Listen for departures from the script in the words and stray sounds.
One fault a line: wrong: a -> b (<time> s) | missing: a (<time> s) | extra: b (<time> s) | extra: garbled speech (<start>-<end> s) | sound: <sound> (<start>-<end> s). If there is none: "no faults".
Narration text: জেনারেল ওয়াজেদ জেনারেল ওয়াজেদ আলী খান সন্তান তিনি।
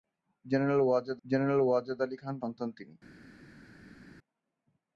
no faults